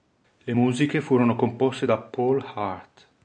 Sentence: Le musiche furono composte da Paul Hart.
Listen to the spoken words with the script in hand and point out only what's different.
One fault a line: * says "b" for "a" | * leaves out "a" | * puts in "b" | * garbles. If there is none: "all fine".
all fine